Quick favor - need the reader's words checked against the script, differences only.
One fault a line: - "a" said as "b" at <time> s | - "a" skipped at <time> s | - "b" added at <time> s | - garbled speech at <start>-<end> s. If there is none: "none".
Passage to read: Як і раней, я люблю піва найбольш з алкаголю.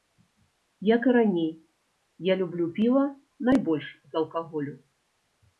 none